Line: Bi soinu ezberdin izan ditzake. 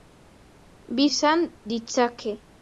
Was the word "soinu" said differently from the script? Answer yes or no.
yes